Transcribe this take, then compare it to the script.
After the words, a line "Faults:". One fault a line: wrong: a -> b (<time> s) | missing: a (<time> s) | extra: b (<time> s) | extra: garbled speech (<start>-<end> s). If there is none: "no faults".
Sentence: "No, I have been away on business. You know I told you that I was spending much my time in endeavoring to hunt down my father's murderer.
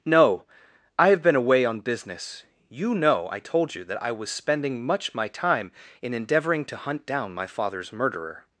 "No, I have been away on business. You know I told you that I was spending much my time in endeavoring to hunt down my father's murderer.
Faults:
no faults